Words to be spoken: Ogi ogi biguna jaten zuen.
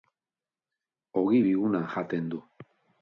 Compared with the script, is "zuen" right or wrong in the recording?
wrong